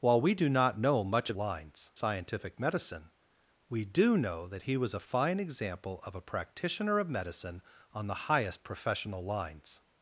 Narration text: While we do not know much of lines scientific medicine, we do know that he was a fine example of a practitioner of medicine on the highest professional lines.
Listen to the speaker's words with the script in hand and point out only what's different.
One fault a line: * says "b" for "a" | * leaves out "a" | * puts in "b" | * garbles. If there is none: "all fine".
all fine